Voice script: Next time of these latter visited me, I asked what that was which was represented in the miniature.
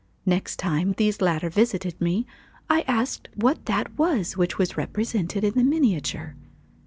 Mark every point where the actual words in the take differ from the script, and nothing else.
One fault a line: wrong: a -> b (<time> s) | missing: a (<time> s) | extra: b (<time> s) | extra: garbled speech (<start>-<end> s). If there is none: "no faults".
no faults